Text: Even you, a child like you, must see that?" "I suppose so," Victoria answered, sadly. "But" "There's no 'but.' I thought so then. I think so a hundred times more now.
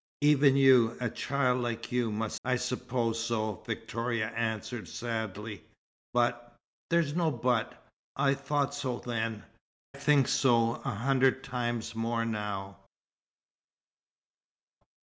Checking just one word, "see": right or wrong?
wrong